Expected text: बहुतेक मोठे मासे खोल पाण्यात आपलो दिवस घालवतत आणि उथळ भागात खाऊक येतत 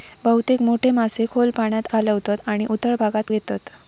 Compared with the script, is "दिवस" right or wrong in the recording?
wrong